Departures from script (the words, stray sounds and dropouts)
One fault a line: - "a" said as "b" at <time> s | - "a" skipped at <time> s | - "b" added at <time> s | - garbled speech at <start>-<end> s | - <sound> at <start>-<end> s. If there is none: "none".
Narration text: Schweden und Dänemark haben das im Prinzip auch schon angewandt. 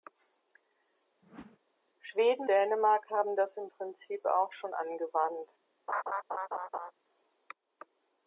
- whoosh at 1.2-1.6 s
- "und" skipped at 2.5 s
- laugh at 5.9-6.9 s